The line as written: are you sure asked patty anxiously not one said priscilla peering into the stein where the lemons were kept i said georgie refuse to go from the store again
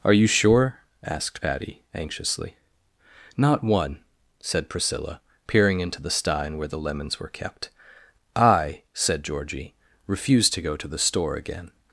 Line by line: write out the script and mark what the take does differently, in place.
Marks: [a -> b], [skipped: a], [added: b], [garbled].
are you sure asked patty anxiously not one said priscilla peering into the stein where the lemons were kept i said georgie refuse to go [from -> to] the store again